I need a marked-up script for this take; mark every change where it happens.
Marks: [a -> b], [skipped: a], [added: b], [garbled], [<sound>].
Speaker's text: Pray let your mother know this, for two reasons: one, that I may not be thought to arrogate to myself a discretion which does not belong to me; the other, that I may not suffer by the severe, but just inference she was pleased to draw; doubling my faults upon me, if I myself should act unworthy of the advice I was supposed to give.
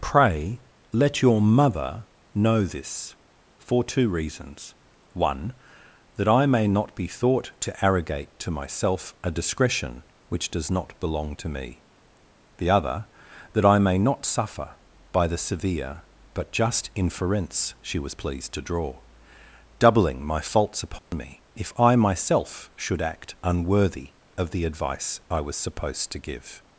Pray let your mother know this, for two reasons: one, that I may not be thought to arrogate to myself a discretion which does not belong to me; the other, that I may not suffer by the severe, but just inference she was pleased to draw; doubling my faults upon [dropout] me, if I myself should act unworthy of the advice I was supposed to give.